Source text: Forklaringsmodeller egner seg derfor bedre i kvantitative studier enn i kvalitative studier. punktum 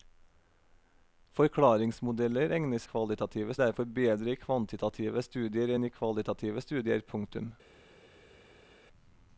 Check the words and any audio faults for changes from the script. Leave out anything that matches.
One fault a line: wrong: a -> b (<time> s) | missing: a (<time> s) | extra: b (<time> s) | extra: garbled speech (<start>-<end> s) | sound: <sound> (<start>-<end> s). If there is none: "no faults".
wrong: seg -> kvalitative (2.9 s)